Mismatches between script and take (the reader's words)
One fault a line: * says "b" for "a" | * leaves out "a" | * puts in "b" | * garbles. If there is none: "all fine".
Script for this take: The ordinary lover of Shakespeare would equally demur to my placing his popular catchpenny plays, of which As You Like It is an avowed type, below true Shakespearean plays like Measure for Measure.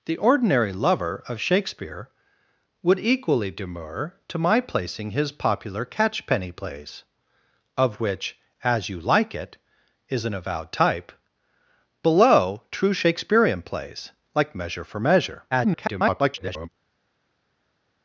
* garbles